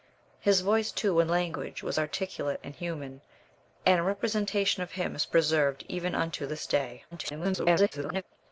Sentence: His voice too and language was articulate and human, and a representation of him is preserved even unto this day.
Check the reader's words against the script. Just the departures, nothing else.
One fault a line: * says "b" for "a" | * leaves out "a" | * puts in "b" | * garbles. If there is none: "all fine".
* garbles